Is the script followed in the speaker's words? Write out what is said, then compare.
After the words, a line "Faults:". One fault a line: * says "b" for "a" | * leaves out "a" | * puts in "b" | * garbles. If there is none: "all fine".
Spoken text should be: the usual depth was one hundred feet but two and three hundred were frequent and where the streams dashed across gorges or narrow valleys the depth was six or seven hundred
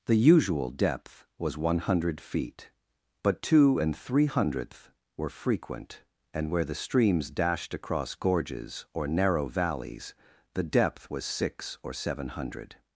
the usual depth was one hundred feet but two and three hundredth were frequent and where the streams dashed across gorges or narrow valleys the depth was six or seven hundred
Faults:
* says "hundredth" for "hundred"